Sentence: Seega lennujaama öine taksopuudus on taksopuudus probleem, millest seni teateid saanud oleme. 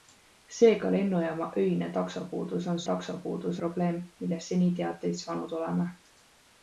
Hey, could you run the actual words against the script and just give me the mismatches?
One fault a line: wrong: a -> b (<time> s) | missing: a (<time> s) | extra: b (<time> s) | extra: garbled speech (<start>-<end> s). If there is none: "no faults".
no faults